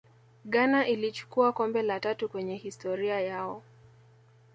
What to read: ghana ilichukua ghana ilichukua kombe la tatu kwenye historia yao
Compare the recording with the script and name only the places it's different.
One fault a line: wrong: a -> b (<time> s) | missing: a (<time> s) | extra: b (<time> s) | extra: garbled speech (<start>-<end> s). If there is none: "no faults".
missing: ghana ilichukua (1.5 s)